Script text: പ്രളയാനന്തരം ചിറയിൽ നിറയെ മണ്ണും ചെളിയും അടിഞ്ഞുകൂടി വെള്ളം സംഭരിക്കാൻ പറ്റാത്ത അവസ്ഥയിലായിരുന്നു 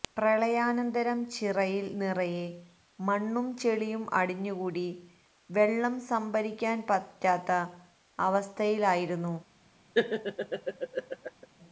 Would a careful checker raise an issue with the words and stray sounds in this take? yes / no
yes